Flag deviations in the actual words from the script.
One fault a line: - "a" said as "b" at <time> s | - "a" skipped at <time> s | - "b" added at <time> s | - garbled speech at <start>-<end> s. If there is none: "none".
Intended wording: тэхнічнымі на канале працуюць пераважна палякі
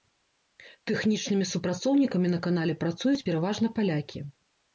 - "супрацоўнікамі" added at 1.5 s